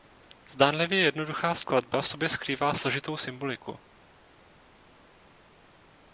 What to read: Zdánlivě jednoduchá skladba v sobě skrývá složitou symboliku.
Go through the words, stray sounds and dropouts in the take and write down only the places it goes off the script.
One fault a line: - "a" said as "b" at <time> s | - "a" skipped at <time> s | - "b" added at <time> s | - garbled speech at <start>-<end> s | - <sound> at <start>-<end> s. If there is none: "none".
none